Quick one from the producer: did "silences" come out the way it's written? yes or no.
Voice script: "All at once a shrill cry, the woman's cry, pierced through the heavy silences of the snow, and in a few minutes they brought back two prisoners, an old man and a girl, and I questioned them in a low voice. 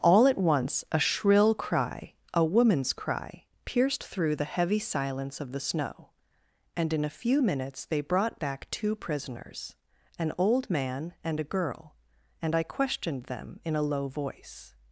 no